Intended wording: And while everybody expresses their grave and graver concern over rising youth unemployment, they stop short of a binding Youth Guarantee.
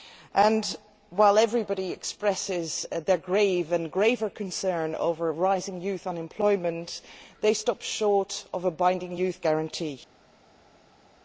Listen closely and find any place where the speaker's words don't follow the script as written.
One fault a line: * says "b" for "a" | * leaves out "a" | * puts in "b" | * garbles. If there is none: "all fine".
all fine